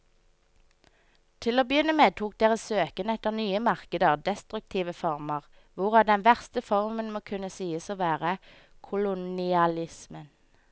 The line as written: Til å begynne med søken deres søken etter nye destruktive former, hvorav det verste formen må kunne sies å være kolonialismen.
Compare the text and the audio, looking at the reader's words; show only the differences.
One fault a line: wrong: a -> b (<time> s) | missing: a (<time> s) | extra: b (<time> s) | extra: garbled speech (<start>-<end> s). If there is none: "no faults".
wrong: søken -> tok (2.2 s)
extra: markeder (3.7 s)
wrong: det -> den (6.1 s)